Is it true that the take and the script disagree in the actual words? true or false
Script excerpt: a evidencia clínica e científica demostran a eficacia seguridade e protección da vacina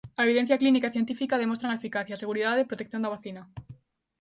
false